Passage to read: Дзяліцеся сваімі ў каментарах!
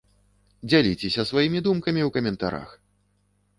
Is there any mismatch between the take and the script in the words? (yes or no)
yes